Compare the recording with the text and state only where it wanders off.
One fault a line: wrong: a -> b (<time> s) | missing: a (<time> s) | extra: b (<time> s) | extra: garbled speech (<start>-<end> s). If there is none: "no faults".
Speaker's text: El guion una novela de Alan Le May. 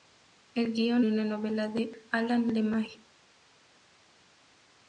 no faults